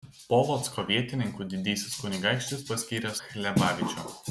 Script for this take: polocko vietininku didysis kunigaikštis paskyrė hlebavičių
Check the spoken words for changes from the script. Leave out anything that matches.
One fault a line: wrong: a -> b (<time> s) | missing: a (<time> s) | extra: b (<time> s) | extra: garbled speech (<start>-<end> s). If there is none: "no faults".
no faults